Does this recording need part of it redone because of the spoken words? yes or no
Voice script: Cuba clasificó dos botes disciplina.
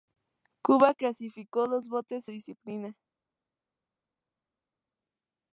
no